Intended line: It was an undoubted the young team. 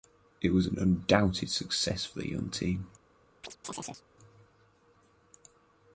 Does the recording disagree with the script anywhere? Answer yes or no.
yes